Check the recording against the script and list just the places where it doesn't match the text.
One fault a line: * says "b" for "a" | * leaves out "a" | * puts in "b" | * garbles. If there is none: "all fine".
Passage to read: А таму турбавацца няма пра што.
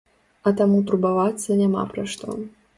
all fine